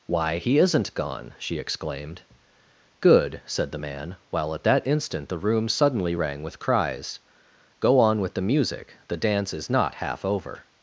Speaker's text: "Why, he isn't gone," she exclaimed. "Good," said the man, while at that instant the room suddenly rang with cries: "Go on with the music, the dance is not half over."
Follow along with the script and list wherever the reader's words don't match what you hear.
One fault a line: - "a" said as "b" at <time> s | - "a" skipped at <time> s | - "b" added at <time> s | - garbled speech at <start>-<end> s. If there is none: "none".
none